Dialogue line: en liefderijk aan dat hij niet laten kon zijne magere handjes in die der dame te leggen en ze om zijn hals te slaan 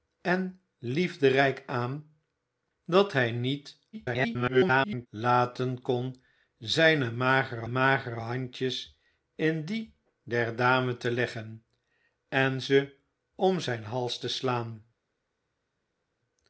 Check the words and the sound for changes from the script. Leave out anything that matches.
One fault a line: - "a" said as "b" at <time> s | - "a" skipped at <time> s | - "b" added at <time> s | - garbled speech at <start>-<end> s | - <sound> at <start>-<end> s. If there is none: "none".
- garbled speech at 3.9-5.1 s
- "magere" added at 7.7 s